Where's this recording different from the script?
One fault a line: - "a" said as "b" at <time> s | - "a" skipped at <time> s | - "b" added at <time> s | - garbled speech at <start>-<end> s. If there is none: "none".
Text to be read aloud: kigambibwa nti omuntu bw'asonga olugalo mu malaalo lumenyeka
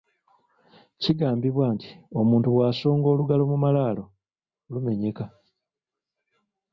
none